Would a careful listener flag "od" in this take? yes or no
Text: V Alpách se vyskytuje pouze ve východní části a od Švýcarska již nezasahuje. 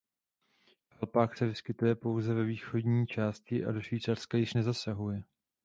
yes